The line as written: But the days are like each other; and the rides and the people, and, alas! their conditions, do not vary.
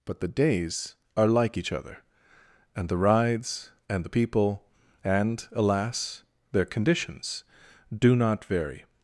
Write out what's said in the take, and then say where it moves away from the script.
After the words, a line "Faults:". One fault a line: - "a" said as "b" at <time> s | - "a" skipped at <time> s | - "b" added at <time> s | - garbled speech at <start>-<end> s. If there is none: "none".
But the days are like each other; and the rides and the people, and, alas! their conditions, do not vary.
Faults:
none